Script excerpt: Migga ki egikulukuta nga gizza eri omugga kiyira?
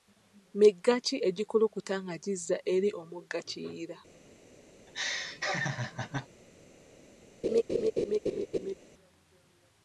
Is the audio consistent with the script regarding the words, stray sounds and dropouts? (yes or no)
no